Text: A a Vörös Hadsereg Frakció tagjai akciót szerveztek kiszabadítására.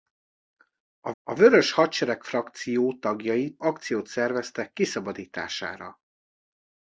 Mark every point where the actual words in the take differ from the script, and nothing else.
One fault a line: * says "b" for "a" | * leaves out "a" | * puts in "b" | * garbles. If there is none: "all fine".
all fine